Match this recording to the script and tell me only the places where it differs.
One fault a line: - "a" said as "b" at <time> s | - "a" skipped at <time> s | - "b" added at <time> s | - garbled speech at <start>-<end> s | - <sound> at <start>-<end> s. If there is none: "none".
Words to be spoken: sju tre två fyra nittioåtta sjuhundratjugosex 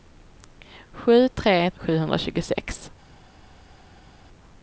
- "två fyra nittioåtta" skipped at 1.7 s